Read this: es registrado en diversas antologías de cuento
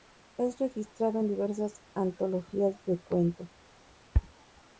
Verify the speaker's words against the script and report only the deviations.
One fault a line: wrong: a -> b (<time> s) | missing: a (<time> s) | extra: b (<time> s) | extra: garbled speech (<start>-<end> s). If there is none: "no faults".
no faults